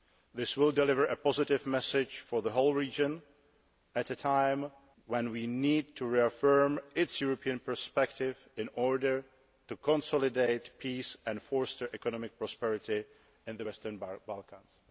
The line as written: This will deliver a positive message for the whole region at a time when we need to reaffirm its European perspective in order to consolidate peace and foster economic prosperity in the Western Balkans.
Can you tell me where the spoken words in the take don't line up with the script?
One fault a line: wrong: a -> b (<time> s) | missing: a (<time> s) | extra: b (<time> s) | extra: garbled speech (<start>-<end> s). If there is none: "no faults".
no faults